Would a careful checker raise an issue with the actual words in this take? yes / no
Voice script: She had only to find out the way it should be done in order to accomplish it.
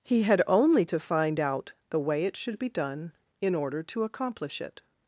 yes